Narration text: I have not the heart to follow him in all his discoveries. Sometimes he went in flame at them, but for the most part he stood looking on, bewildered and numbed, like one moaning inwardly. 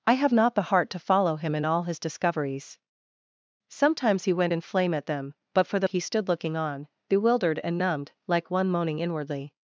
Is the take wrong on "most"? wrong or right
wrong